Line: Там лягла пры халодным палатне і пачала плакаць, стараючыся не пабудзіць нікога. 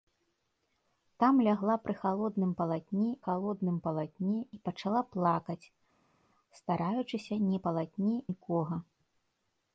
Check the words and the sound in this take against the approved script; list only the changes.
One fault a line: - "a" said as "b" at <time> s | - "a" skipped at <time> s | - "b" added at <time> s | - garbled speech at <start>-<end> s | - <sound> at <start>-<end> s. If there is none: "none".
- "халодным палатне" added at 3.2 s
- "пабудзіць" said as "палатне" at 7.7 s